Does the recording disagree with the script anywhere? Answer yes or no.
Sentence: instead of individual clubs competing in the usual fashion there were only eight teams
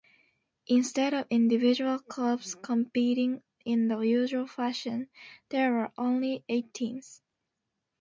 no